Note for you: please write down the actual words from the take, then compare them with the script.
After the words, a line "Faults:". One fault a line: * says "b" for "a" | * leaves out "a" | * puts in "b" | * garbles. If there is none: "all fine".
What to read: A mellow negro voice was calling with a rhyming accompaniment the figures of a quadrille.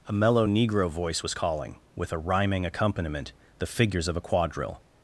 A mellow negro voice was calling with a rhyming accompaniment the figures of a quadrille.
Faults:
all fine